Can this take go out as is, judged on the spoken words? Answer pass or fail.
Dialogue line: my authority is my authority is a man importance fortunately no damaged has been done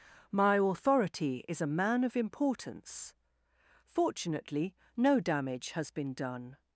fail